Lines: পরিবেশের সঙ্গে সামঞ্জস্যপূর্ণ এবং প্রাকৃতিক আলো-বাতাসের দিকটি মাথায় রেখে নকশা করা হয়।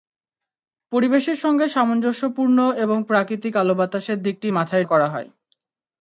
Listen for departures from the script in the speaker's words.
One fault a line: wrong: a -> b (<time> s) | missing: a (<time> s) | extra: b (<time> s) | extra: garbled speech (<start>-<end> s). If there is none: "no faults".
missing: রেখে নকশা (4.8 s)